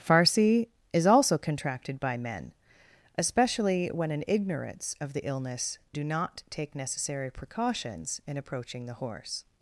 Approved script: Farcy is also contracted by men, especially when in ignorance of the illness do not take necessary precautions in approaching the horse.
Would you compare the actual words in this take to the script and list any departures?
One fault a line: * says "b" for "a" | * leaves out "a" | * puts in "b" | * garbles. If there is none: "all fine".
all fine